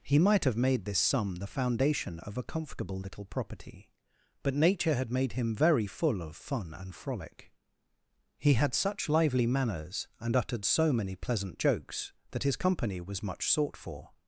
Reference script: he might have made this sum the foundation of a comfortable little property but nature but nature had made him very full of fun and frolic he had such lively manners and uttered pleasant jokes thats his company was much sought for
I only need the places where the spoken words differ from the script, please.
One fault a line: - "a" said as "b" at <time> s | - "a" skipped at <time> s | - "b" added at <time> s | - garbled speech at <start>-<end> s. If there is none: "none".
- "but nature" skipped at 5.0 s
- "so many" added at 10.7 s
- "thats" said as "that" at 12.3 s